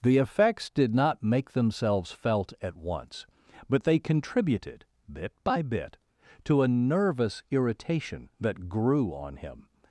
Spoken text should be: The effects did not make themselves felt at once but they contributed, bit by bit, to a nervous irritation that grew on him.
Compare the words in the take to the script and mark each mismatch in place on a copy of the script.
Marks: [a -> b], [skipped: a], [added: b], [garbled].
The effects did not make themselves felt at once but they contributed, bit by bit, to a nervous irritation that grew on him.